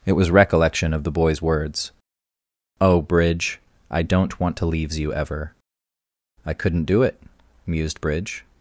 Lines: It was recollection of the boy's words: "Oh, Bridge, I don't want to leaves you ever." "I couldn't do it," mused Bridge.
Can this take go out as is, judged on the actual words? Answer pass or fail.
pass